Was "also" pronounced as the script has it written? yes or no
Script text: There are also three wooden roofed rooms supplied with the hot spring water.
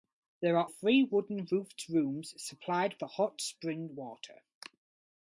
no